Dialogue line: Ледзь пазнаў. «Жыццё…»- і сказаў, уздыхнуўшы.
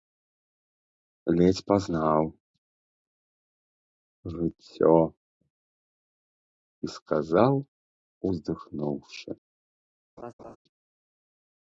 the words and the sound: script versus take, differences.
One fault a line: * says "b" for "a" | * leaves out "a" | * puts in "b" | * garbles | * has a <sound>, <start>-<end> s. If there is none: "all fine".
* has a laugh, 10.2-10.6 s